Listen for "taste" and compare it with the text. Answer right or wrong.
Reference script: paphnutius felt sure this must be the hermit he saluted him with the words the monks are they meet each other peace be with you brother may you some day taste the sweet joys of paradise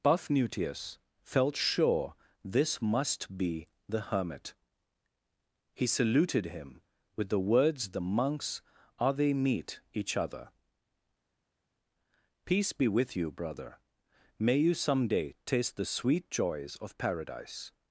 right